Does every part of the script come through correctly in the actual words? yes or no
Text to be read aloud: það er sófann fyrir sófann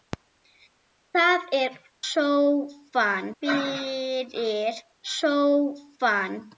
yes